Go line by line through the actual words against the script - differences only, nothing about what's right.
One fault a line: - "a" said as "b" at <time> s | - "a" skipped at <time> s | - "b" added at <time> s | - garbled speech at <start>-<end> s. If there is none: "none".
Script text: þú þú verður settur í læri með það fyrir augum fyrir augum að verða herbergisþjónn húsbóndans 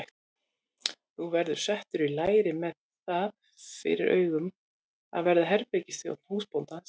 - "þú" skipped at 1.3 s
- "fyrir augum" skipped at 4.5 s